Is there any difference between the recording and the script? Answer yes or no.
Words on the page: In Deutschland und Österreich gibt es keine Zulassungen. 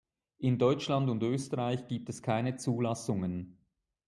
no